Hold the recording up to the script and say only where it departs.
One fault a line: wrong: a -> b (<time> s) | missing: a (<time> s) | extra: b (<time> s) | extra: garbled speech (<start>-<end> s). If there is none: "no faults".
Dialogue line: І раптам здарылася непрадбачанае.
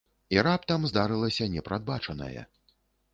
no faults